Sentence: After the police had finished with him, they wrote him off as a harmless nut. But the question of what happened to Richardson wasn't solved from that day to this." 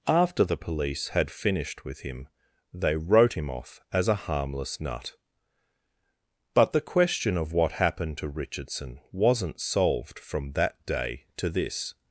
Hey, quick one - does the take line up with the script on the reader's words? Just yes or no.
yes